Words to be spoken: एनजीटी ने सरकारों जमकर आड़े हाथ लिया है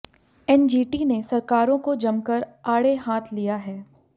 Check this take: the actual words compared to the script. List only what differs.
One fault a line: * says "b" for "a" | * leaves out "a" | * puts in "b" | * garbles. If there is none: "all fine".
* puts in "को"